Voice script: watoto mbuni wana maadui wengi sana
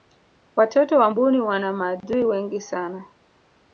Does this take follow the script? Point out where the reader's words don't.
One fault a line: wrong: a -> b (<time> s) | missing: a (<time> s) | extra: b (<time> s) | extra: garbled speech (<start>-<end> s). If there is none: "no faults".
extra: wa (1.0 s)